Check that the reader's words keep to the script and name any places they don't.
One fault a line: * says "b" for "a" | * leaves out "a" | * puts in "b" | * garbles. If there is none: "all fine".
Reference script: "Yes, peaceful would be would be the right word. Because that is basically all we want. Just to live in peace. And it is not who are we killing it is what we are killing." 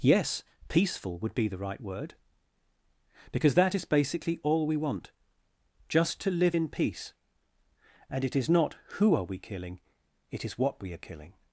* leaves out "would be"